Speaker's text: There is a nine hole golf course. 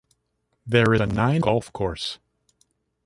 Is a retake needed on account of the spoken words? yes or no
yes